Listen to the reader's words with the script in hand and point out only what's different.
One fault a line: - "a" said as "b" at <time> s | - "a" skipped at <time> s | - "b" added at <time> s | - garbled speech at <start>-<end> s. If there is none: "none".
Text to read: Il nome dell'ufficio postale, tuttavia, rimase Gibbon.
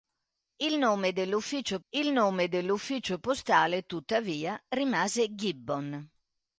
- "il nome dell'ufficio" added at 1.9 s